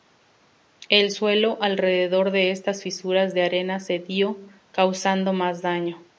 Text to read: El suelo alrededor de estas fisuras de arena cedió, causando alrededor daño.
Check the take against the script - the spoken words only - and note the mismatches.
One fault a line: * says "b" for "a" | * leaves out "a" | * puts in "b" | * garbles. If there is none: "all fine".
* says "más" for "alrededor"